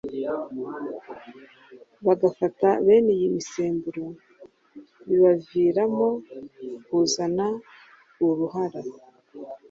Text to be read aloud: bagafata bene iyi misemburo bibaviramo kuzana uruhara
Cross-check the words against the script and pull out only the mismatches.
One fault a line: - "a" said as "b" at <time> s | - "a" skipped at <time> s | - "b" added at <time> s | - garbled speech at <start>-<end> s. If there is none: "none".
none